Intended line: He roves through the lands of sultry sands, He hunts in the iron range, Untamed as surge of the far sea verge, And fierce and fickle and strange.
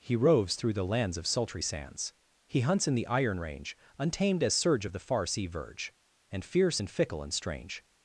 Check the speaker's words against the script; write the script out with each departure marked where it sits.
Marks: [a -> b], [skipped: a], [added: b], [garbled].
He roves through the lands of sultry sands, He hunts in the iron range, Untamed as surge of the far sea verge, And fierce and fickle and strange.